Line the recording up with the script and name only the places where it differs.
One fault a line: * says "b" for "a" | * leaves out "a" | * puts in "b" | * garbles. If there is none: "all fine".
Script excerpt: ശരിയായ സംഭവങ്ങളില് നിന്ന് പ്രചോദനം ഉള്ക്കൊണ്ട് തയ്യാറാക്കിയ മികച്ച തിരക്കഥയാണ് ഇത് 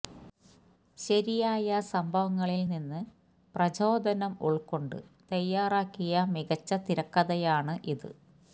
all fine